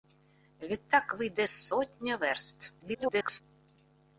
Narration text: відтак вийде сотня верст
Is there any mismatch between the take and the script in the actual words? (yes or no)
yes